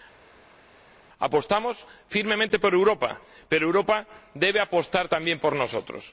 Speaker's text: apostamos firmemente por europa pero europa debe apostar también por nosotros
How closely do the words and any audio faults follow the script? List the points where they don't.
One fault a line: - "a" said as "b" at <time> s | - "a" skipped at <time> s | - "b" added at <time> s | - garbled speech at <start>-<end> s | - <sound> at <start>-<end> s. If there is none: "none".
none